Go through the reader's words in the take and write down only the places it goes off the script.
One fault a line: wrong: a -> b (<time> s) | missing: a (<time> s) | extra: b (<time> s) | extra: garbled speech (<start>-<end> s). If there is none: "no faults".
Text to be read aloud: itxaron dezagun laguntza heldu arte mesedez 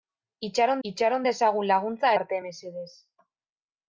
extra: itxaron (0.9 s)
missing: heldu (2.1 s)